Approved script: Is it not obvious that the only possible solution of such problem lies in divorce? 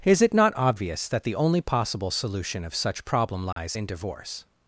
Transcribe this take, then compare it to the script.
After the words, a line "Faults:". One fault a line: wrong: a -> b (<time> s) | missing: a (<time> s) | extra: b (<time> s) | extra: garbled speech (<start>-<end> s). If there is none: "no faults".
Is it not obvious that the only possible solution of such problem lies in divorce?
Faults:
no faults